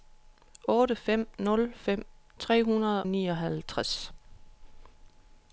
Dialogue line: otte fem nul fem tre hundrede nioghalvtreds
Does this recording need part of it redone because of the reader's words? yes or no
no